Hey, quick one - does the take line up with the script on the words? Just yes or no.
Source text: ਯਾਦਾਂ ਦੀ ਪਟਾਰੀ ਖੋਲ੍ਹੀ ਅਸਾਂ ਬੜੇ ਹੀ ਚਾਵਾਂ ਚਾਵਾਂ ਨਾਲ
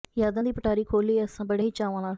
no